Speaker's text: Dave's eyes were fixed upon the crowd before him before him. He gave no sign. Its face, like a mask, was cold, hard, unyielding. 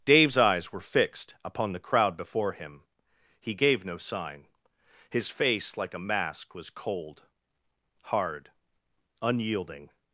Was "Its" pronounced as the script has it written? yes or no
no